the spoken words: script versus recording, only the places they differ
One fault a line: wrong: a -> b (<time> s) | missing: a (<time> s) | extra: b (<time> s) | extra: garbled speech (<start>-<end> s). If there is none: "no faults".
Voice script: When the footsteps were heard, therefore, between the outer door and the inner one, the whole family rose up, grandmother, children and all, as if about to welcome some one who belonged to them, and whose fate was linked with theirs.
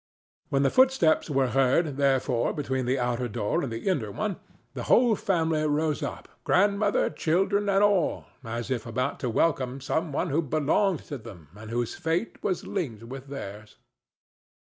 no faults